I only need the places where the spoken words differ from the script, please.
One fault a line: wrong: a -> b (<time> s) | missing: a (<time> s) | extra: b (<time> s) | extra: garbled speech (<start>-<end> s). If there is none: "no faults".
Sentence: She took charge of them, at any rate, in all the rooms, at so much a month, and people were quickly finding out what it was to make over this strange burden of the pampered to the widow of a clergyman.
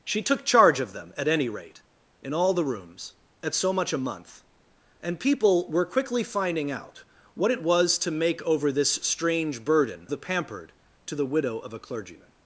missing: of (10.1 s)